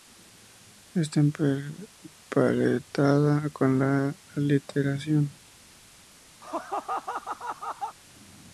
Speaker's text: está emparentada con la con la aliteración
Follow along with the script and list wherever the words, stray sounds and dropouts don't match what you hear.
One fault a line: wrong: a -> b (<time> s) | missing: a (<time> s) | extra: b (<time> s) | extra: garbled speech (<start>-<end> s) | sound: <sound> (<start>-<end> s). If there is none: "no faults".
missing: con la (4.2 s)
sound: laugh (6.4-8.0 s)